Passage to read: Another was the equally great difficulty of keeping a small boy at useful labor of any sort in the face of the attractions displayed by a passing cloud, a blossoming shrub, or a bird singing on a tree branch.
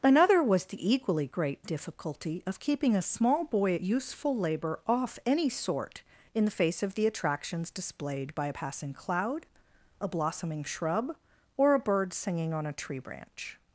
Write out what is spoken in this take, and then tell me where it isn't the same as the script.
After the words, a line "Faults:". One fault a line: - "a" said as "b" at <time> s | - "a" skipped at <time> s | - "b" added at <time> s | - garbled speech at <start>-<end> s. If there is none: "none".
Another was the equally great difficulty of keeping a small boy at useful labor off any sort in the face of the attractions displayed by a passing cloud, a blossoming shrub, or a bird singing on a tree branch.
Faults:
- "of" said as "off" at 4.9 s